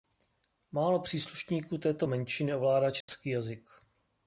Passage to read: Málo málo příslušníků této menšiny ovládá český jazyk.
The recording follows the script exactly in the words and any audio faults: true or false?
false